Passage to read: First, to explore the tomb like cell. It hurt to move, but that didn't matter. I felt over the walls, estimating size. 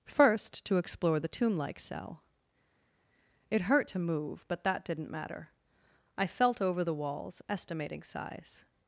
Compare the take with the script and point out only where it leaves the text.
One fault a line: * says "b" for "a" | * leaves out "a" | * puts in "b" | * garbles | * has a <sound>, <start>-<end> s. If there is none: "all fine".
all fine